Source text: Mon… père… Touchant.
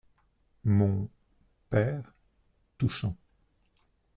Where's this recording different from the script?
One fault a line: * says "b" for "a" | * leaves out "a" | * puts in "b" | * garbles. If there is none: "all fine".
all fine